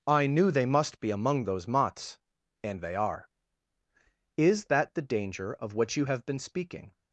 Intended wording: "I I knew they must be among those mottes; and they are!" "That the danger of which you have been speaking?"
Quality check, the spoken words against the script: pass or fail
fail